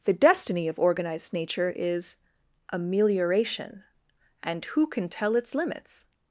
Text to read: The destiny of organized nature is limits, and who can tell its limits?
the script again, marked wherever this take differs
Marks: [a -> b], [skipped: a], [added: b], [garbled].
The destiny of organized nature is [limits, -> amelioration] and who can tell its limits?